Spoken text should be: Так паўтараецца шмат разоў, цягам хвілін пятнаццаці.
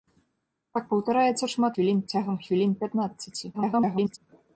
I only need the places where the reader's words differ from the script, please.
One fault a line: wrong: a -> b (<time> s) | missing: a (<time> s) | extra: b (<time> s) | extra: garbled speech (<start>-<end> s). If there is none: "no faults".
wrong: разоў -> хвілін (1.7 s)
extra: garbled speech (3.5-4.2 s)